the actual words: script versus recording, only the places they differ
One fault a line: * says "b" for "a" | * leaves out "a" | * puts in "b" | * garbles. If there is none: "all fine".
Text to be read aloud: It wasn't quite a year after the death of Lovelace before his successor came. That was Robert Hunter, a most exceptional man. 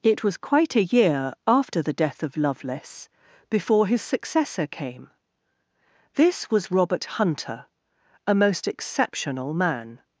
* says "was" for "wasn't"
* says "This" for "That"